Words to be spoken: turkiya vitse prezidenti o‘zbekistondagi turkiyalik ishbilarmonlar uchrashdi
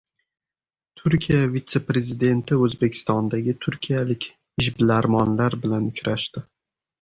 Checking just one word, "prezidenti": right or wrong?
right